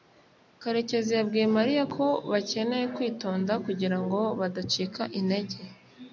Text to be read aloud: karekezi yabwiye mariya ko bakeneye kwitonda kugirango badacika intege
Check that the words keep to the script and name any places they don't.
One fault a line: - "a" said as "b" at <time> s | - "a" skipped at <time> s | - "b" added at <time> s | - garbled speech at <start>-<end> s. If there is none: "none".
none